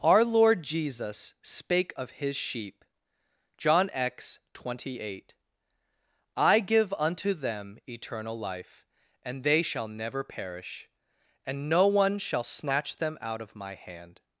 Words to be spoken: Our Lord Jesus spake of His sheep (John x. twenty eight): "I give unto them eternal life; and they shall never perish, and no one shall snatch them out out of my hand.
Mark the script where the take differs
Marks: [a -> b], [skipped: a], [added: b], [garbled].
Our Lord Jesus spake of His sheep (John x. twenty eight): "I give unto them eternal life; and they shall never perish, and no one shall snatch them out [skipped: out] of my hand.